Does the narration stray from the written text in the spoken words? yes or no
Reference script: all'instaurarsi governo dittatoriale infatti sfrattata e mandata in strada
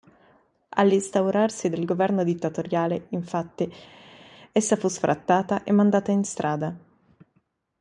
yes